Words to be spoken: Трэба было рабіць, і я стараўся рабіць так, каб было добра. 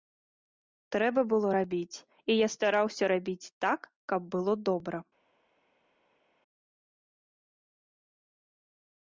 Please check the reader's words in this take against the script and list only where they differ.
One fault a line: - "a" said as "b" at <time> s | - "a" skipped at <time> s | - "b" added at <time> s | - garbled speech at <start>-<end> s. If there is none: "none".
none